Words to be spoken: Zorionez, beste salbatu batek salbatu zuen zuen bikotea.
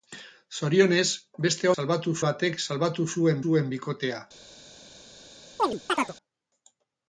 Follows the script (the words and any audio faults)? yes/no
no